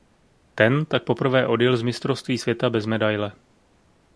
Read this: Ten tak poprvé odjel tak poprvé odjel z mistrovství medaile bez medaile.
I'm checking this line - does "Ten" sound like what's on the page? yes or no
yes